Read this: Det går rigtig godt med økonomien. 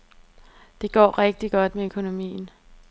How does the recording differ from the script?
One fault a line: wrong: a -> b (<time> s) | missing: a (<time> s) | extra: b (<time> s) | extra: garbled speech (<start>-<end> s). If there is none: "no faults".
no faults